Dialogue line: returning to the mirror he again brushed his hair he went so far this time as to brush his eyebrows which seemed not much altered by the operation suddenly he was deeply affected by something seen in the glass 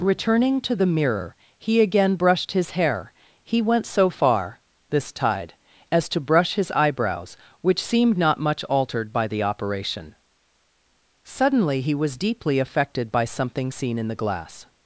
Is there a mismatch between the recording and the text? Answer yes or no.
yes